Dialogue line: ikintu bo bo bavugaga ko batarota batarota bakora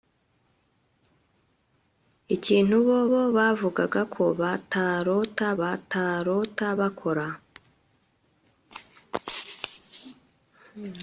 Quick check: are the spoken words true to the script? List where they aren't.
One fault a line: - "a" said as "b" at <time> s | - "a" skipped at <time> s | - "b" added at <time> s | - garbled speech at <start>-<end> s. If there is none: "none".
none